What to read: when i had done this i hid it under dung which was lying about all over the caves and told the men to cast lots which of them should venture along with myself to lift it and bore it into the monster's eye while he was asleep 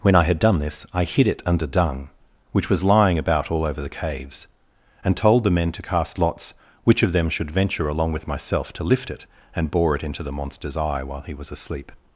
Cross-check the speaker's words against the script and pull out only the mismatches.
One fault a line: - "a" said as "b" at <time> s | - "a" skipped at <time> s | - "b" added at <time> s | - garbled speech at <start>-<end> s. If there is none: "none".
none